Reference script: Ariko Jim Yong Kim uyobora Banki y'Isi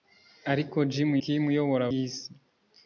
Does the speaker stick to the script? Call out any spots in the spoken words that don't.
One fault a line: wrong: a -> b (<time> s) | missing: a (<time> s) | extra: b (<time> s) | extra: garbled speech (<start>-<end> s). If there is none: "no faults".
missing: Yong (1.1 s)
missing: Banki (1.8 s)